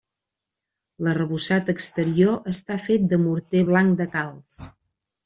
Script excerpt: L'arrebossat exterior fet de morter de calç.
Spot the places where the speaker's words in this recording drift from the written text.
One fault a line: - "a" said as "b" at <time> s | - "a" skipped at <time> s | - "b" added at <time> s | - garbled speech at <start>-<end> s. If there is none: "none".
- "està" added at 2.5 s
- "blanc" added at 3.7 s